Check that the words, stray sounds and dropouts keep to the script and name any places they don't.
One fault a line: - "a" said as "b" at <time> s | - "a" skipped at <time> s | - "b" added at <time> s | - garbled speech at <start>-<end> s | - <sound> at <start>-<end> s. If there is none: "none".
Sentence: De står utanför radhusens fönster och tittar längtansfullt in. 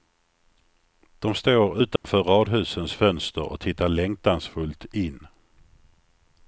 - dropout at 2.0-2.0 s